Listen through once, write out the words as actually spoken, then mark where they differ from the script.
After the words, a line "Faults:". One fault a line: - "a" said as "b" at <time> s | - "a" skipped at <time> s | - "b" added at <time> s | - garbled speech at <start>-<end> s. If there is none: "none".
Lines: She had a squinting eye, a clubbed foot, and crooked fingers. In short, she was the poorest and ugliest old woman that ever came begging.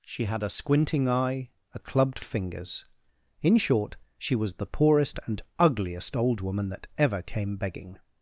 She had a squinting eye, a clubbed fingers. In short, she was the poorest and ugliest old woman that ever came begging.
Faults:
- "foot and crooked" skipped at 2.2 s